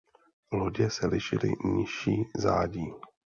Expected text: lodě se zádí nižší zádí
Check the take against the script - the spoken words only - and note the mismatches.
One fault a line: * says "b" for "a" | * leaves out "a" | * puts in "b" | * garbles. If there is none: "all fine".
* says "lišily" for "zádí"